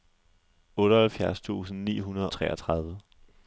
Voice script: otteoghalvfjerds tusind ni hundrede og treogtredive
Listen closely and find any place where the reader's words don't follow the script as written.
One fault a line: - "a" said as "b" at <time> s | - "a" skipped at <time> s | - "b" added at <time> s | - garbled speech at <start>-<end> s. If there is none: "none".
- "og" skipped at 2.3 s